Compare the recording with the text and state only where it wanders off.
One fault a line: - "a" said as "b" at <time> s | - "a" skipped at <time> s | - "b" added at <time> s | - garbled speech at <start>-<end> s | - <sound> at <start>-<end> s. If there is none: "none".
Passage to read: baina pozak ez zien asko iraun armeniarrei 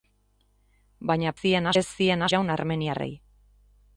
- "pozak" said as "zien" at 1.4 s
- "asko" skipped at 2.3 s